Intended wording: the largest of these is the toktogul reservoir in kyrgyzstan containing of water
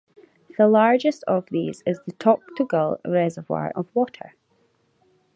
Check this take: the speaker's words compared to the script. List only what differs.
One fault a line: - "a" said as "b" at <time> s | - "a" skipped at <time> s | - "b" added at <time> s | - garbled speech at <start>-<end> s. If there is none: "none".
- "in kyrgyzstan containing" skipped at 3.7 s